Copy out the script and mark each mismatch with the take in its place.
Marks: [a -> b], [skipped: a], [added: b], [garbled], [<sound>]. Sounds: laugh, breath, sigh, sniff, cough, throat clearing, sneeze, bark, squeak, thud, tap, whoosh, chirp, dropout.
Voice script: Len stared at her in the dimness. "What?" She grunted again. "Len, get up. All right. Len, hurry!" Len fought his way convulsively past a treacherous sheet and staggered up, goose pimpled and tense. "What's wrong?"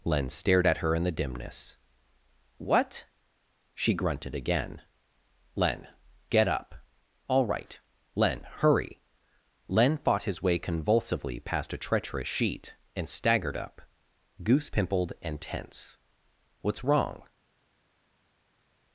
Len stared at her in the dimness. "What?" She grunted again. "Len, get up. All right. Len, hurry!" Len fought his way convulsively past a treacherous sheet and staggered up, goose pimpled and tense. "What's wrong?"